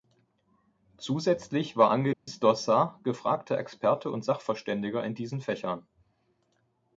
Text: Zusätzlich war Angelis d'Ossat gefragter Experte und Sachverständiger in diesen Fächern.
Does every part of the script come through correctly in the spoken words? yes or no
yes